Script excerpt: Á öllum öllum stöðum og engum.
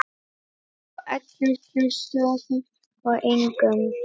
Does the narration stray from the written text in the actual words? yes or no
no